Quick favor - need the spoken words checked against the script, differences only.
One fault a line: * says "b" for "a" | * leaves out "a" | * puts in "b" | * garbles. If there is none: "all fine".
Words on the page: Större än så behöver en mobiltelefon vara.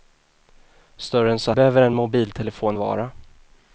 all fine